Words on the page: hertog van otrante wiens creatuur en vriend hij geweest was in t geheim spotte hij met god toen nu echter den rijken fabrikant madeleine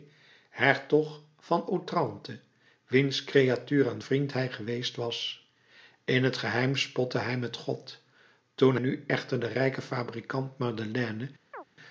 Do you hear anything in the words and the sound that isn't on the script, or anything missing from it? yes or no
yes